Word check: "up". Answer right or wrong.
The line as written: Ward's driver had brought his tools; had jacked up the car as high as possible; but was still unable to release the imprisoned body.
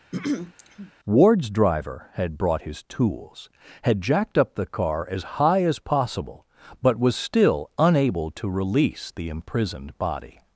right